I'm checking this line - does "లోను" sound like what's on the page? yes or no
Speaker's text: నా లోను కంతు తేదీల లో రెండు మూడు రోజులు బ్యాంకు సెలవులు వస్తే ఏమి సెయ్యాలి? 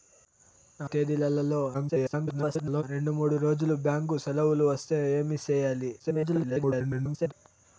no